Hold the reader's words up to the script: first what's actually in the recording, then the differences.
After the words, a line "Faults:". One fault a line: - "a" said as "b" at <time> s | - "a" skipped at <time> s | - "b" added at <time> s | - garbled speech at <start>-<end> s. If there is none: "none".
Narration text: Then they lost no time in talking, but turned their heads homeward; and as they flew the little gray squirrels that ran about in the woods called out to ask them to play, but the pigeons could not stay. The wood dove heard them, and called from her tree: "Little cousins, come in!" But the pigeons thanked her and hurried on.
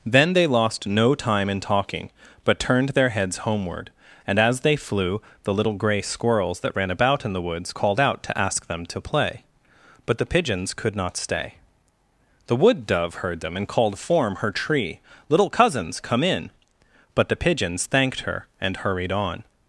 Then they lost no time in talking, but turned their heads homeward; and as they flew the little gray squirrels that ran about in the woods called out to ask them to play, but the pigeons could not stay. The wood dove heard them, and called form her tree: "Little cousins, come in!" But the pigeons thanked her and hurried on.
Faults:
- "from" said as "form" at 14.0 s